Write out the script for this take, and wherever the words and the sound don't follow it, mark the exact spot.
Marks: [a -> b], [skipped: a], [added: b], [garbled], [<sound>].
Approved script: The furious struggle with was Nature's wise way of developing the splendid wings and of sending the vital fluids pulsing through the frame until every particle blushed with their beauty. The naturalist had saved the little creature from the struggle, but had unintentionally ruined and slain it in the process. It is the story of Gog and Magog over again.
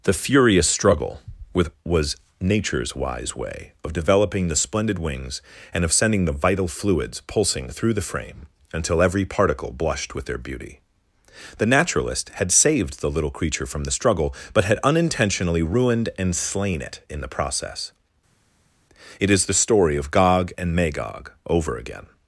The furious struggle with was Nature's wise way of developing the splendid wings and of sending the vital fluids pulsing through the frame until every particle blushed with their beauty. The naturalist had saved the little creature from the struggle, but had unintentionally ruined and slain it in the process. It is the story of Gog and Magog over again.